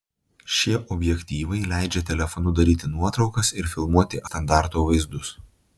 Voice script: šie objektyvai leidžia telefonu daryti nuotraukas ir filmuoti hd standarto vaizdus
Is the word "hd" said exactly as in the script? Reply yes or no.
no